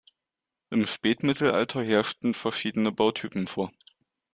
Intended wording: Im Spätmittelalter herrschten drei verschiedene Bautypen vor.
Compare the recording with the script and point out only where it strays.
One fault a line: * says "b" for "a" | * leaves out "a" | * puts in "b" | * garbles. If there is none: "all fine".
* leaves out "drei"